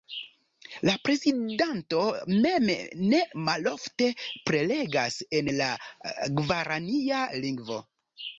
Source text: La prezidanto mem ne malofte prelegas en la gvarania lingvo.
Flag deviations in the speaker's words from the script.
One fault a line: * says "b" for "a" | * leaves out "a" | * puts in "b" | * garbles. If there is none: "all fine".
all fine